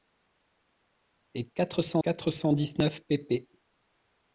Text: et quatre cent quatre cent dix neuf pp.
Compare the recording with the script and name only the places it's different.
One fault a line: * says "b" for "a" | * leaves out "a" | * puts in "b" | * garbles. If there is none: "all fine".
all fine